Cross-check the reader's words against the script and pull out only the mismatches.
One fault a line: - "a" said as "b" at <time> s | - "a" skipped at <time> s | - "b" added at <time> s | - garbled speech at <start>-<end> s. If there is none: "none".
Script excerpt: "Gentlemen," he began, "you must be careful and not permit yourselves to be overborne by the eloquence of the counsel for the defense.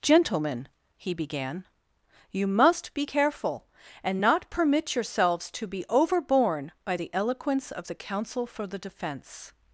none